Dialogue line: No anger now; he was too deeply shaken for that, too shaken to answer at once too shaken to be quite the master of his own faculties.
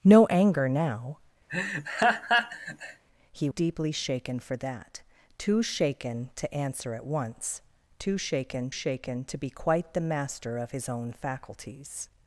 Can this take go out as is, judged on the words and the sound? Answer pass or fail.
fail